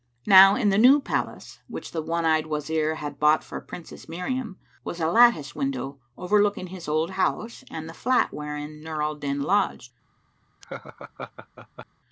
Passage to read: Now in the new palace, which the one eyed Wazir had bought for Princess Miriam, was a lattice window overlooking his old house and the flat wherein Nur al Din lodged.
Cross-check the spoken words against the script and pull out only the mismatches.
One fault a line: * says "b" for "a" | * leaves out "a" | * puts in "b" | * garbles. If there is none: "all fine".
all fine